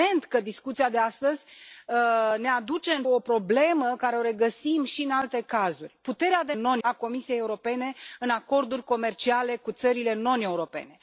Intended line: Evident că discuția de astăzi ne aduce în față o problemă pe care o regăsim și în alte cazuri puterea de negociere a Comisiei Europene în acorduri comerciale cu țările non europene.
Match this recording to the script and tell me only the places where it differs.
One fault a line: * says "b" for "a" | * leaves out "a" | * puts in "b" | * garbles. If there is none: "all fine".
* leaves out "față"
* says "non" for "negociere"